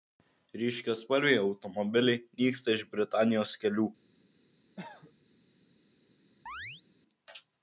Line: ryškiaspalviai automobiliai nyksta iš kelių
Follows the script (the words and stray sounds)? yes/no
no